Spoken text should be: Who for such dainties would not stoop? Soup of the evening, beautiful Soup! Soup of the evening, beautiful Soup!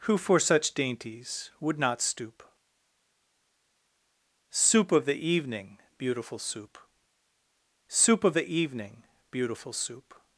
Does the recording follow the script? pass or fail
pass